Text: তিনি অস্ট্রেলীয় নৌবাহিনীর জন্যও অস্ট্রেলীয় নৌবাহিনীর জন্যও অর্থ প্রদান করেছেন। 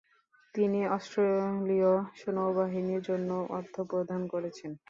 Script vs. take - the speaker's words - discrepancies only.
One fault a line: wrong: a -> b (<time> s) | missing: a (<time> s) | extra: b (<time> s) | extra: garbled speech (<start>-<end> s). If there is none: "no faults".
missing: অস্ট্রেলীয় নৌবাহিনীর জন্যও (3.4 s)